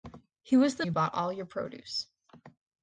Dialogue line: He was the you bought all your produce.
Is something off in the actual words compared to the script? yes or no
no